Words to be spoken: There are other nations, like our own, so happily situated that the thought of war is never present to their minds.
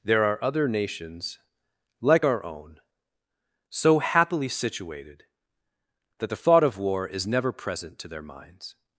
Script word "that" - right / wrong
right